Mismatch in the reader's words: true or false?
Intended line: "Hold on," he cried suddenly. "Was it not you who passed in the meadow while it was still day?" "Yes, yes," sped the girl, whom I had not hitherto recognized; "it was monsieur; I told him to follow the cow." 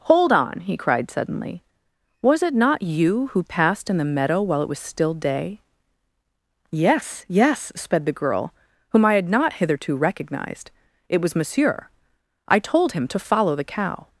false